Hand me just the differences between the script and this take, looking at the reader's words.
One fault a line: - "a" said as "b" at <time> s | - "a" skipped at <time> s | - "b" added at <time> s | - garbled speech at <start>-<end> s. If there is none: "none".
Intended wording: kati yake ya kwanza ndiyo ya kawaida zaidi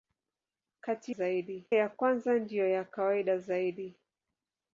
- "yake" said as "zaidi" at 1.1 s